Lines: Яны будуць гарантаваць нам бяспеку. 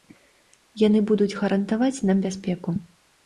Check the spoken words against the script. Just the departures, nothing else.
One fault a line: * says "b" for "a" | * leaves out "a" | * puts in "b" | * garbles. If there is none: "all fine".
all fine